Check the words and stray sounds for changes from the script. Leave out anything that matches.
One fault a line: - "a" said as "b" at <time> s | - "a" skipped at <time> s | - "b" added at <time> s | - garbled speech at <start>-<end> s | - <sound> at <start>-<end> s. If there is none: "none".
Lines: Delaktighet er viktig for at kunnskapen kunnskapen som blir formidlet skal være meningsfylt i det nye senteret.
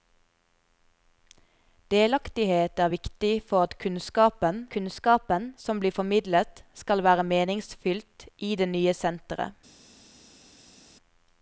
none